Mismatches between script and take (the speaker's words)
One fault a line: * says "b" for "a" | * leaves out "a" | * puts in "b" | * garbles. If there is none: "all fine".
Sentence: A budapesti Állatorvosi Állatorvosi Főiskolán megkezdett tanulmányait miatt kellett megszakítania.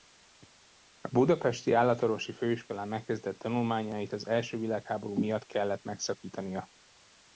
* leaves out "Állatorvosi"
* puts in "az első világháború"